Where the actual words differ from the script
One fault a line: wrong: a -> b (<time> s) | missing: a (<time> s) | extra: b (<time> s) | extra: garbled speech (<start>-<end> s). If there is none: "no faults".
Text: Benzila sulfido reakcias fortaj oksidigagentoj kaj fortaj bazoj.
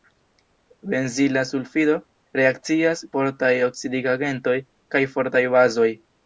no faults